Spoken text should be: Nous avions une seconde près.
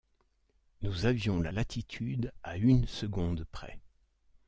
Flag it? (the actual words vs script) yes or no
yes